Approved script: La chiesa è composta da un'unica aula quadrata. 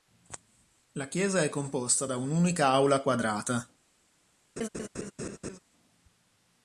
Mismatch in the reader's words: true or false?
false